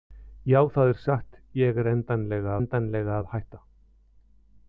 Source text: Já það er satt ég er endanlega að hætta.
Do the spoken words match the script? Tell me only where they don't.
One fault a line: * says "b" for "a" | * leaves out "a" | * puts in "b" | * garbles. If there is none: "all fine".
* puts in "endanlega"